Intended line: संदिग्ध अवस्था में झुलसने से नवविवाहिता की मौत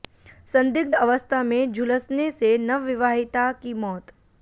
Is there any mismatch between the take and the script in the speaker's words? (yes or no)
no